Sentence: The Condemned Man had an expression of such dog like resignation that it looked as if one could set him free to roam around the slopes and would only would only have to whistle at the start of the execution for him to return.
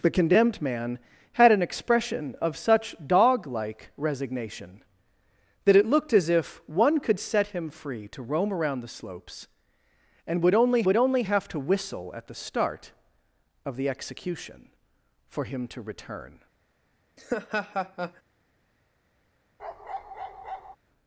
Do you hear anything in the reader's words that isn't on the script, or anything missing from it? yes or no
no